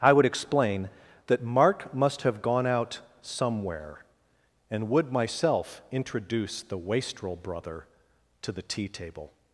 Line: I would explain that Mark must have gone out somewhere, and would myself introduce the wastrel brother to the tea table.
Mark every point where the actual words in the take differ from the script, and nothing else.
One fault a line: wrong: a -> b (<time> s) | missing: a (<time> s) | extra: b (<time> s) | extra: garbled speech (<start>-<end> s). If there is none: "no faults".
no faults